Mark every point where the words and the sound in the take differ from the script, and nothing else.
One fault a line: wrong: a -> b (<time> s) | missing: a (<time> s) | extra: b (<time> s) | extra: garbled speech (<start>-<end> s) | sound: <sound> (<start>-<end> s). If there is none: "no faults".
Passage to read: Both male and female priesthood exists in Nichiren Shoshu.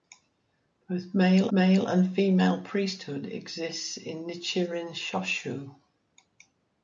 extra: male (1.5 s)